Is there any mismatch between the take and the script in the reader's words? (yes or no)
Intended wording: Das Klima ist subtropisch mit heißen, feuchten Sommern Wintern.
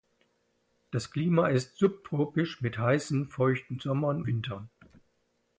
no